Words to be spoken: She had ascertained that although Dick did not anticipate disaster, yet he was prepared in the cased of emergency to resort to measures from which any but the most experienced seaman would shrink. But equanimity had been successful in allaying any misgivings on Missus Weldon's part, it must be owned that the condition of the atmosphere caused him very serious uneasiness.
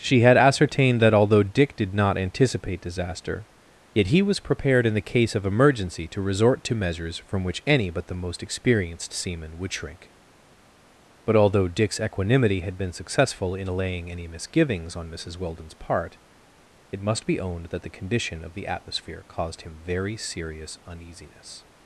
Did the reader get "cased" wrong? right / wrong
wrong